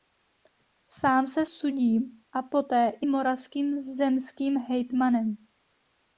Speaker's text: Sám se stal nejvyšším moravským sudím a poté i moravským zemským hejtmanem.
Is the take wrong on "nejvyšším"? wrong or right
wrong